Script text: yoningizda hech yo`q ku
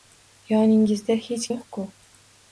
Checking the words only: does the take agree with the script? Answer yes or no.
yes